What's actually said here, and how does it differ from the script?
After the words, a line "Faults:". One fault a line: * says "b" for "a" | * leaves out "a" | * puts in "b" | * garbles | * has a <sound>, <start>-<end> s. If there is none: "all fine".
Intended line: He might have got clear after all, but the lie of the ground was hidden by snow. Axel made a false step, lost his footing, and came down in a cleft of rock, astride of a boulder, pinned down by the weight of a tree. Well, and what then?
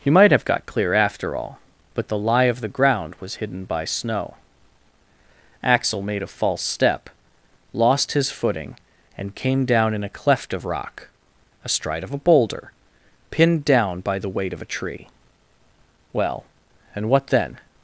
He might have got clear after all, but the lie of the ground was hidden by snow. Axel made a false step, lost his footing, and came down in a cleft of rock, astride of a boulder, pinned down by the weight of a tree. Well, and what then?
Faults:
all fine